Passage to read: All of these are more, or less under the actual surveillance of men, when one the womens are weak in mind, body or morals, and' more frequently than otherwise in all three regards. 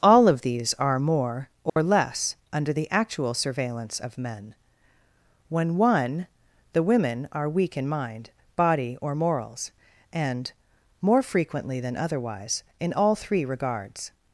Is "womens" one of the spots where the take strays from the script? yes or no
yes